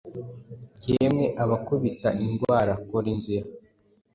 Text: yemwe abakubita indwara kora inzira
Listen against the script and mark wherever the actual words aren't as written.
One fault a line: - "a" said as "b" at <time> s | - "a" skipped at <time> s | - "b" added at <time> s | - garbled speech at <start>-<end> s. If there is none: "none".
none